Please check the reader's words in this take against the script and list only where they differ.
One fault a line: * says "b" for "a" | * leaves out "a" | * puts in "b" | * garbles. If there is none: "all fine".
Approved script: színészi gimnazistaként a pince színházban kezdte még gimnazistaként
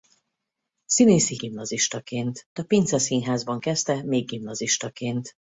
all fine